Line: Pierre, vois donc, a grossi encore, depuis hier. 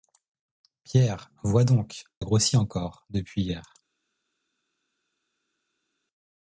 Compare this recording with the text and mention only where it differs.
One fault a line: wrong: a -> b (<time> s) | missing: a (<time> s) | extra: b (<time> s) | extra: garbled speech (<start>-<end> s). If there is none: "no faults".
no faults